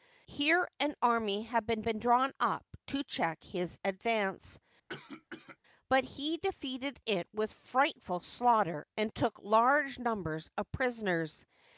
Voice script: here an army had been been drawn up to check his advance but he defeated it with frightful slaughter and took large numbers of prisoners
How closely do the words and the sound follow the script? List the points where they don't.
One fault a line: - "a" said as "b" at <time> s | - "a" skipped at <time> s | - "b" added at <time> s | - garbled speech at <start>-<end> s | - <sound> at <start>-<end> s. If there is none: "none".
- cough at 4.9-5.6 s